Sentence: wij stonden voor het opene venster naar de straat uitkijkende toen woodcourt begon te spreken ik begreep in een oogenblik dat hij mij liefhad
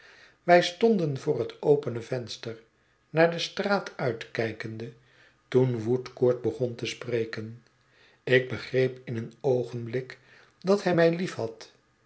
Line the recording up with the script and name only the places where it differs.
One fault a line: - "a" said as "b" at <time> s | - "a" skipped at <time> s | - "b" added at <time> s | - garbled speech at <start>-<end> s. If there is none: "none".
none